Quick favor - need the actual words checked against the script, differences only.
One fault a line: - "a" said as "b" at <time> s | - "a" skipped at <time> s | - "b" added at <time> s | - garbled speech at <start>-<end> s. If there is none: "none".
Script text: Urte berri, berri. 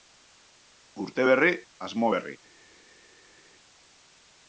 - "asmo" added at 1.9 s